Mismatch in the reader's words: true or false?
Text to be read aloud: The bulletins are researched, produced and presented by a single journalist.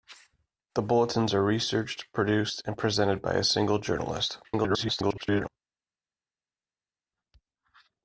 true